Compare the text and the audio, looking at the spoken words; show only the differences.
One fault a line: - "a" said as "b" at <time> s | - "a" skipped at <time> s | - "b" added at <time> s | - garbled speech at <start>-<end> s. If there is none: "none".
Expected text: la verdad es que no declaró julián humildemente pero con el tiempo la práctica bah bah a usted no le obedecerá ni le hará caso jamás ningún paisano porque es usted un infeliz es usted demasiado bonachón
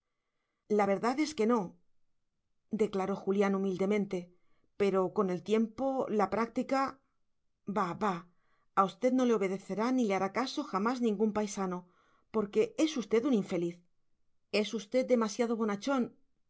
none